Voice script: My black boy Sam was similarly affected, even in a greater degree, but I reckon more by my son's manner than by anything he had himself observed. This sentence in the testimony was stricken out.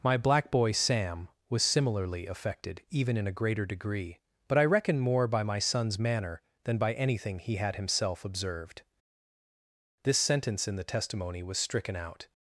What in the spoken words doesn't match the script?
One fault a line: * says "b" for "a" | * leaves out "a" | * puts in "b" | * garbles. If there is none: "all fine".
all fine